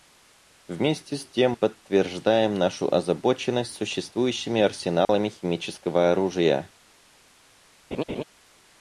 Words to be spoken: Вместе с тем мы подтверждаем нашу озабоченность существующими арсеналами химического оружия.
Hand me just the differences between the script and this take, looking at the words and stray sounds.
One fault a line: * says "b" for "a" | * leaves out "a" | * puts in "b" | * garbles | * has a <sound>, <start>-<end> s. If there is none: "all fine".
* leaves out "мы"
* has a dropout, 5.0-5.1 s
* has a laugh, 7.9-8.2 s